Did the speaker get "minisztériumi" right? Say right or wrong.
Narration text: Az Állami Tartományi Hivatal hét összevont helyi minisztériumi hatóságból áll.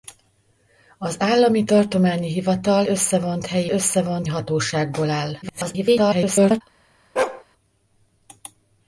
wrong